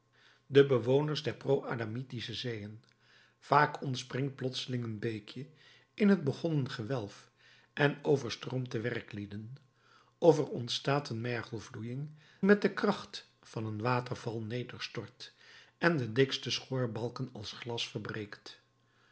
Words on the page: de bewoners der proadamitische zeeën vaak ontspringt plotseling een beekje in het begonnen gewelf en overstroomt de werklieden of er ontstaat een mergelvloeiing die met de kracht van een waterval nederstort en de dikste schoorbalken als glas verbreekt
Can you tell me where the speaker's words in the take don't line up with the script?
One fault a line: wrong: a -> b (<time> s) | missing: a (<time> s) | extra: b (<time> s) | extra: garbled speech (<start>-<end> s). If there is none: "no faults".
missing: die (12.1 s)